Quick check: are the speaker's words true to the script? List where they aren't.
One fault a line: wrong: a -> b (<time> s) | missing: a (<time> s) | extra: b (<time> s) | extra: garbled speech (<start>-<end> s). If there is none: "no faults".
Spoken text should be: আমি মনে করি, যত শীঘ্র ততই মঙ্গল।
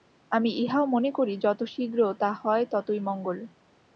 extra: ইহাও (0.6 s)
extra: তা হয় (2.2 s)